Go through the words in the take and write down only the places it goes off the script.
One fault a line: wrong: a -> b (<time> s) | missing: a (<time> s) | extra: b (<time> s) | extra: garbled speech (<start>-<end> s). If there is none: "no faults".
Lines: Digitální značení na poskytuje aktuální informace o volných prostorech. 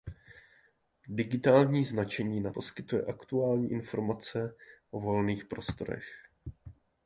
no faults